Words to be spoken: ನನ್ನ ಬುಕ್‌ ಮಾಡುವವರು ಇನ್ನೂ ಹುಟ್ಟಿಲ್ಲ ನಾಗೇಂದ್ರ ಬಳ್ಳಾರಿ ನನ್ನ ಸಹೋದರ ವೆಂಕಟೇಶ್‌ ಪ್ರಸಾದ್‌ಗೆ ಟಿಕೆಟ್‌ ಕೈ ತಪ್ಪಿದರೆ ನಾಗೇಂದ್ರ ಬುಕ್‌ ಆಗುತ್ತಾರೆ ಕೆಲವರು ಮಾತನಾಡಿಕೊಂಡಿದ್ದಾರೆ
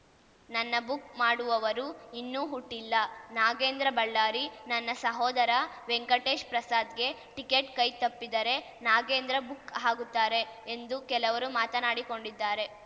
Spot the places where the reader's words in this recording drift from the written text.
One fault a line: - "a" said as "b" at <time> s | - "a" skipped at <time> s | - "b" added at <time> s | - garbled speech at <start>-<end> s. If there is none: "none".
- "ಎಂದು" added at 10.7 s